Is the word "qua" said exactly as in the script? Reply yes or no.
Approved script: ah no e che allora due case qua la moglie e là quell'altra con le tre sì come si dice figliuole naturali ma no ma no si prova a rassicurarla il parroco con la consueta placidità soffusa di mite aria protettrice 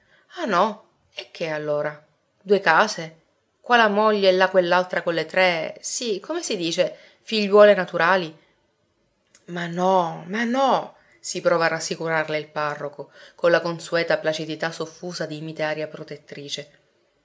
yes